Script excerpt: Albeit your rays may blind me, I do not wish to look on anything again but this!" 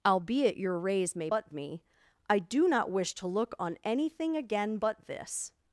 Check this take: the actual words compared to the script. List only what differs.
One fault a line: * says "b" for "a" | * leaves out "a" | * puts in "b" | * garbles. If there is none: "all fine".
* says "but" for "blind"